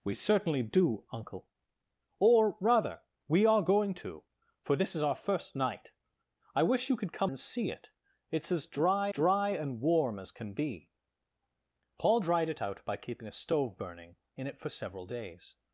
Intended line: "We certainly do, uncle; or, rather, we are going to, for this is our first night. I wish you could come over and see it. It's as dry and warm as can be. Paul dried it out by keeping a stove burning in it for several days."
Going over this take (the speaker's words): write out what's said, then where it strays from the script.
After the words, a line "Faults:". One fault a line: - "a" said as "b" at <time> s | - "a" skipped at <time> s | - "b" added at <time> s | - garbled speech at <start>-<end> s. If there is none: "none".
"We certainly do, uncle; or, rather, we are going to, for this is our first night. I wish you could come and see it. It's as dry dry and warm as can be. Paul dried it out by keeping a stove burning in it for several days."
Faults:
- "over" skipped at 7.3 s
- "dry" added at 9.1 s